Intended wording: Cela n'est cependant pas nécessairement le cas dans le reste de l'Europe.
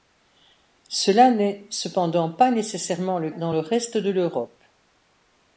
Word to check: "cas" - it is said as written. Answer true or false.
false